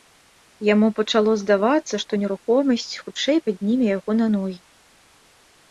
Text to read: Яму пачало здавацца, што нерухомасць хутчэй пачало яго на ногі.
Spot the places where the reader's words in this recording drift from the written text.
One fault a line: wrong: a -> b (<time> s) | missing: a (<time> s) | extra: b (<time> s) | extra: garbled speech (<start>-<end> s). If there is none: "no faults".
wrong: пачало -> падніме (3.5 s)